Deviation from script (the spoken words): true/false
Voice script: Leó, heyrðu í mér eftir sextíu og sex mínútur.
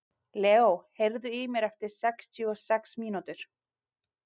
false